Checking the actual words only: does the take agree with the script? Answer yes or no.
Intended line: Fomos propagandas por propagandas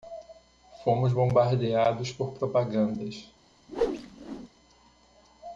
no